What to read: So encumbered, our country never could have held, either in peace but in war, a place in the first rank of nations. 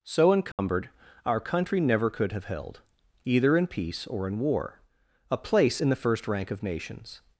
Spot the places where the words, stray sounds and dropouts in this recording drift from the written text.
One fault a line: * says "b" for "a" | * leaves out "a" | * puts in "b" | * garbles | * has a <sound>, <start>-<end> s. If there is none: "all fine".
* has a dropout, 0.5-0.6 s
* says "or" for "but"